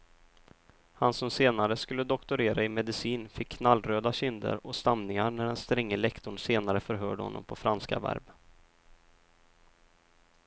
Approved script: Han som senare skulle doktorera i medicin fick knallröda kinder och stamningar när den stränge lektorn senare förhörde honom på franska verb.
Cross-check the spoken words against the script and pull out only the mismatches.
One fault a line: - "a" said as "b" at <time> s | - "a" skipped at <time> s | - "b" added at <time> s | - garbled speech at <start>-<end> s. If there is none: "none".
none